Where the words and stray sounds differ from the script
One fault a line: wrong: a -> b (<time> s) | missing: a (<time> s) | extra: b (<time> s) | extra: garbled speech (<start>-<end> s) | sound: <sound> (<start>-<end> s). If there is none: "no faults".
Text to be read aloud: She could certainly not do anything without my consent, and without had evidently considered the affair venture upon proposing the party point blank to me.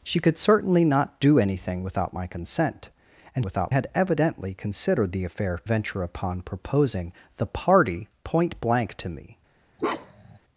sound: bark (9.8-10.4 s)